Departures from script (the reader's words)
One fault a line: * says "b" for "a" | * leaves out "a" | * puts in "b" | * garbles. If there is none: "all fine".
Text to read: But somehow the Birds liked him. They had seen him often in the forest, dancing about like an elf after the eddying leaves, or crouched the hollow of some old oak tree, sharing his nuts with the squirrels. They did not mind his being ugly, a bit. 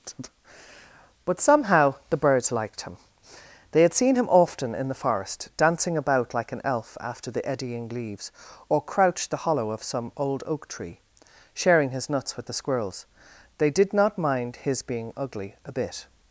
all fine